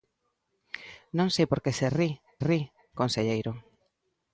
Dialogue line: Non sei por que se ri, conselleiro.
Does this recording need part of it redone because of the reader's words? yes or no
yes